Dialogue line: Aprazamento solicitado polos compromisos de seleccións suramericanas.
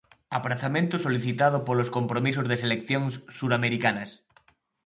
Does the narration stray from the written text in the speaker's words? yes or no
no